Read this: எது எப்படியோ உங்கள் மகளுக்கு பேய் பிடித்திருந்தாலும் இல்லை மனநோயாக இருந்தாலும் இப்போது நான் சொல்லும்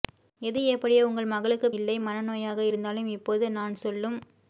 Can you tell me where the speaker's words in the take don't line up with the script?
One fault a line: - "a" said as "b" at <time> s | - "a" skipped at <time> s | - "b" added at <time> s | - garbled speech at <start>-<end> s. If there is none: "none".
- "பேய் பிடித்திருந்தாலும்" skipped at 1.7 s